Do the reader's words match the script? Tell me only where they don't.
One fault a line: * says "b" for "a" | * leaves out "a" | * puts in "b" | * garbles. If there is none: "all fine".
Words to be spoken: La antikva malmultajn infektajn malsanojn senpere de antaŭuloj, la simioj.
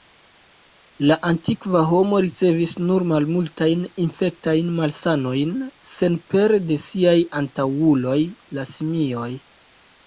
* puts in "homo ricevis nur"
* puts in "siaj"